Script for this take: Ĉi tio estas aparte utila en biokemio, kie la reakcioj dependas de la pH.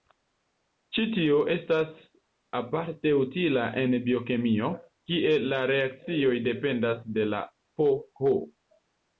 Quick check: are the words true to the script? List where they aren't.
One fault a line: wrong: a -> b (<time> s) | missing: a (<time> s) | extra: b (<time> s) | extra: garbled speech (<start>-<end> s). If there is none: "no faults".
no faults